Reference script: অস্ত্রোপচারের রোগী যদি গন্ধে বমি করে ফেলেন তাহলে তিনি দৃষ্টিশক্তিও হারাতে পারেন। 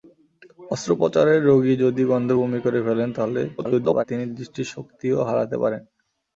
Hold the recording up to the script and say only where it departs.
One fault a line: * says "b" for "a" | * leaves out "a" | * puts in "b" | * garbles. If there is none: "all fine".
* garbles